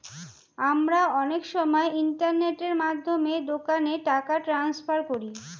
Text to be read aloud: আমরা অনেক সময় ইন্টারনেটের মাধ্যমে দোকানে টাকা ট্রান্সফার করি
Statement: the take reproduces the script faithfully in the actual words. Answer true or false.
true